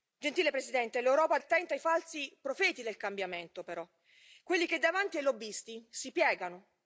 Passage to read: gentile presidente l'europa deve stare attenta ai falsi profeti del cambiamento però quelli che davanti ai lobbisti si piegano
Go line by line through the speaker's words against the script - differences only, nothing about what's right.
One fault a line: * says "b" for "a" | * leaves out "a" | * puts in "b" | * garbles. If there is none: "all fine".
* leaves out "deve stare"